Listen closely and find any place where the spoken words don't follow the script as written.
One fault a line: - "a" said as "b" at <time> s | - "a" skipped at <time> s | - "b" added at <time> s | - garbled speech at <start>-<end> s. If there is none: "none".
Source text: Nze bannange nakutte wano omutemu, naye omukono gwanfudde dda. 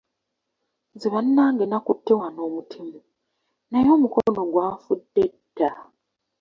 none